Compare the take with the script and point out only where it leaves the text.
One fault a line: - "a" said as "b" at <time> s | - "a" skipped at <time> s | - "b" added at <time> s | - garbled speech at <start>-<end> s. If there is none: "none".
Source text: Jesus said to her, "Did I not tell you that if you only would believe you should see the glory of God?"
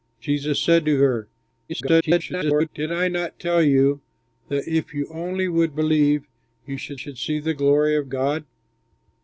- garbled speech at 1.7-2.7 s
- "should" added at 6.9 s